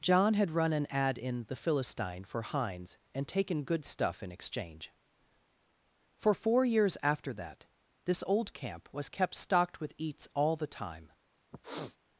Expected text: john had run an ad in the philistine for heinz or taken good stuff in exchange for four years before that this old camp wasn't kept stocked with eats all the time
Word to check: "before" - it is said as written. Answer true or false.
false